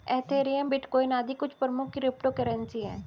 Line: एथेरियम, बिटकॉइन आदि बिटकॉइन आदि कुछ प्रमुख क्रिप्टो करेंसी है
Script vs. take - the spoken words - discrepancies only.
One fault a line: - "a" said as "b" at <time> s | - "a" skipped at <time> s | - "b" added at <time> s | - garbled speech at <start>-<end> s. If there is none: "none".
- "बिटकॉइन आदि" skipped at 1.3 s